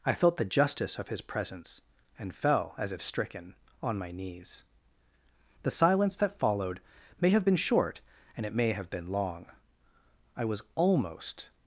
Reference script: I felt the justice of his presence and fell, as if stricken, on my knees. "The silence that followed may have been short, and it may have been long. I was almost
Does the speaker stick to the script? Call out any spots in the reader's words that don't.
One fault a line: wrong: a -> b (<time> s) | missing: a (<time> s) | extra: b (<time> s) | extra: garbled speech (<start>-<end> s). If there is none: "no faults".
no faults